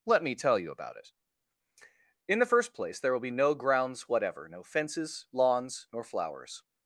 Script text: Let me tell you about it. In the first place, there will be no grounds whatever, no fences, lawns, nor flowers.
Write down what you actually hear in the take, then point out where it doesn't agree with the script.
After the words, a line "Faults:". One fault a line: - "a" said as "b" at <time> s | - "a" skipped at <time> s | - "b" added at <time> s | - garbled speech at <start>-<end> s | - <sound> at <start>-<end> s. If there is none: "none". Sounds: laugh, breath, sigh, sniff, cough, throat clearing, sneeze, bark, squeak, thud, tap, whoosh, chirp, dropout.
Let me tell you about it. In the first place, there will be no grounds whatever, no fences, lawns, nor flowers.
Faults:
none